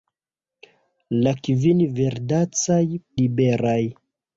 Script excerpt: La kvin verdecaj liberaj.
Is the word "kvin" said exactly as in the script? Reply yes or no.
yes